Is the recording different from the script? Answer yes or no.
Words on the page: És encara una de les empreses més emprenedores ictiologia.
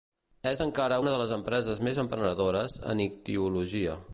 yes